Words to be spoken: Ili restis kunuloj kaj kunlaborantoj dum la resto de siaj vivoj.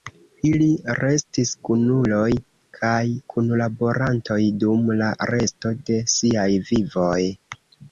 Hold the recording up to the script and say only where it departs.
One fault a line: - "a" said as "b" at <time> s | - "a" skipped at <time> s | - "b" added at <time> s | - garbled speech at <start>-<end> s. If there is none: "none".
none